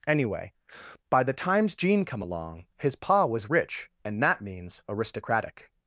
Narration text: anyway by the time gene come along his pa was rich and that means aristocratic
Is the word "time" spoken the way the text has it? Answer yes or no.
no